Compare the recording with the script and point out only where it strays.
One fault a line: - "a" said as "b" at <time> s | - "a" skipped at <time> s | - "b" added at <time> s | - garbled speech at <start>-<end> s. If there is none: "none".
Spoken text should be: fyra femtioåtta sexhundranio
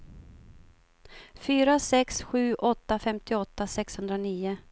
- "sex sju åtta" added at 1.8 s